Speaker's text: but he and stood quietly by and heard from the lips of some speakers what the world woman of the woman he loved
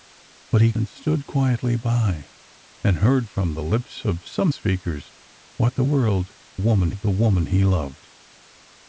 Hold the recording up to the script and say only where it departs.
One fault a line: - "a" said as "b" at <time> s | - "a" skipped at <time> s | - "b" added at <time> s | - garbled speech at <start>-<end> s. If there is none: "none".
none